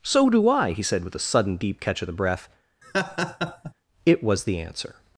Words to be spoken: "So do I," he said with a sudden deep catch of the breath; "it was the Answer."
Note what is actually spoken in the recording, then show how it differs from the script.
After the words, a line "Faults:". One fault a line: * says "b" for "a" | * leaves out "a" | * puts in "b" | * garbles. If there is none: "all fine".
"So do I," he said with a sudden deep catch of the breath; "it was the Answer."
Faults:
all fine